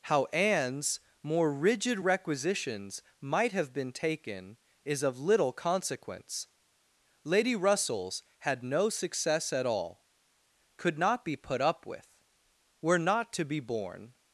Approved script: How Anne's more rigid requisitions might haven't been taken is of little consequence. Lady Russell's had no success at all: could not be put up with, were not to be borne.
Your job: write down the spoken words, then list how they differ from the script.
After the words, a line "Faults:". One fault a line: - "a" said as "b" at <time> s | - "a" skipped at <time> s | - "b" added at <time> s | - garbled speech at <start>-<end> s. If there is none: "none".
How Anne's more rigid requisitions might have been taken is of little consequence. Lady Russell's had no success at all: could not be put up with, were not to be borne.
Faults:
- "haven't" said as "have" at 3.5 s